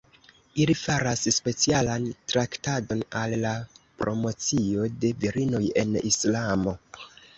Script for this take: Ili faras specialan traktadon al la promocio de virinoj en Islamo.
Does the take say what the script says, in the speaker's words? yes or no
yes